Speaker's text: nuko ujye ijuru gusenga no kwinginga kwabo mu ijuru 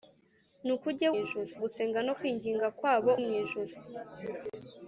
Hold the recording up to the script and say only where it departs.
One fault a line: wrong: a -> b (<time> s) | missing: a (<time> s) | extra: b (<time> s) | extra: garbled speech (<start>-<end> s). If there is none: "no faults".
no faults